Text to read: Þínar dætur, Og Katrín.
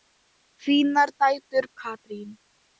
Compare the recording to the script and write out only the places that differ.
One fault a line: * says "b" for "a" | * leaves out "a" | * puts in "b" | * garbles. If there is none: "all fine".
all fine